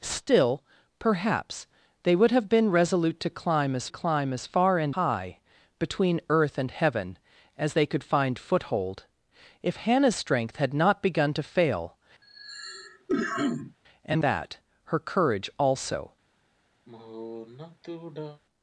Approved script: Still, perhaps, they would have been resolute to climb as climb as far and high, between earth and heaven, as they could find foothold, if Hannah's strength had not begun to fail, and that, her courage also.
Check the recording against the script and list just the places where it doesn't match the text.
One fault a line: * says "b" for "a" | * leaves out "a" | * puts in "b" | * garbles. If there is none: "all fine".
all fine